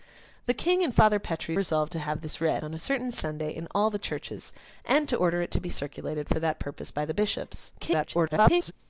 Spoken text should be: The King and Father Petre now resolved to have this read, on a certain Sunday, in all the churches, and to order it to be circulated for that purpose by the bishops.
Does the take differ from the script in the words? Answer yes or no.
yes